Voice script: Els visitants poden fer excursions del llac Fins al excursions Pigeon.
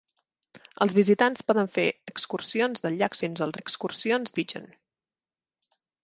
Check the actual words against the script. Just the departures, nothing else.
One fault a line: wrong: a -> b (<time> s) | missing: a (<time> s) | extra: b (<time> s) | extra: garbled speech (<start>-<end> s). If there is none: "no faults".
no faults